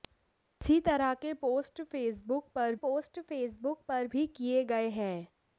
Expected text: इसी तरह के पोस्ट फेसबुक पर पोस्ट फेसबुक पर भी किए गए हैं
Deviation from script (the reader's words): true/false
false